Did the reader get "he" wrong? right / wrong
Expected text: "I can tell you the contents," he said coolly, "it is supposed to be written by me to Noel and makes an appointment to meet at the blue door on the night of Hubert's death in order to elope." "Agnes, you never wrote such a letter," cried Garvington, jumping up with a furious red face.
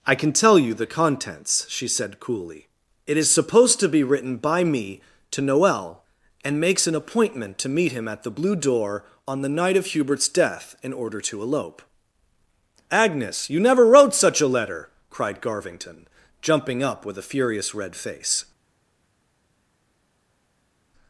wrong